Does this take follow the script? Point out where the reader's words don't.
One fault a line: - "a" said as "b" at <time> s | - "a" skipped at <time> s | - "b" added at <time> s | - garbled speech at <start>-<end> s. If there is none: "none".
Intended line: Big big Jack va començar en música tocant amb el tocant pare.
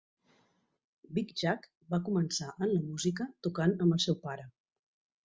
- "big" skipped at 1.3 s
- "la" added at 2.7 s
- "tocant" said as "seu" at 4.1 s